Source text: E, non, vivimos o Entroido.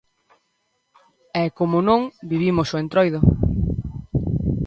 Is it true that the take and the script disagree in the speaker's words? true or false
true